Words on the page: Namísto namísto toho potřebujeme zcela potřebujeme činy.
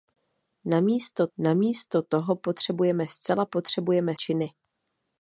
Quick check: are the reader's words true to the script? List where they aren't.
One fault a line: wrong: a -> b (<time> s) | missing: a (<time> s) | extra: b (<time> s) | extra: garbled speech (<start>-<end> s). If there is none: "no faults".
no faults